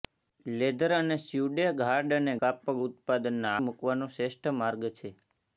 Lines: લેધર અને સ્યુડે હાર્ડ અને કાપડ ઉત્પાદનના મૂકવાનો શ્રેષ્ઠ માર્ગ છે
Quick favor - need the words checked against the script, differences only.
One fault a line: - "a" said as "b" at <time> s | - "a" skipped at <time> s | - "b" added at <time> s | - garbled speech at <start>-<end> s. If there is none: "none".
none